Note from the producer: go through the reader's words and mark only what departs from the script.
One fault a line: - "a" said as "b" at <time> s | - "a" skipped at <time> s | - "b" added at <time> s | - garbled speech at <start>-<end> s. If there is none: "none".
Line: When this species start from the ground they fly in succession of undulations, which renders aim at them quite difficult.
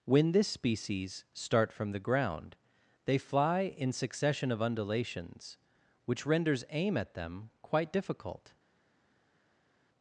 none